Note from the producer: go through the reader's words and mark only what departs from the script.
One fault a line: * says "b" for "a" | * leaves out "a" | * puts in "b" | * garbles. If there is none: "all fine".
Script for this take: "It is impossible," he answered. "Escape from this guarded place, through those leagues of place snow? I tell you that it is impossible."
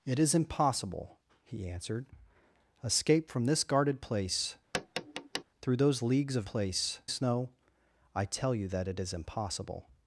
all fine